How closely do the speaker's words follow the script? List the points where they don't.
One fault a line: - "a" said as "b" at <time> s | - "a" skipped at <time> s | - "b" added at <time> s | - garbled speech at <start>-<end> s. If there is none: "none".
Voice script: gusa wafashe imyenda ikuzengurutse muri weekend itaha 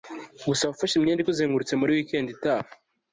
none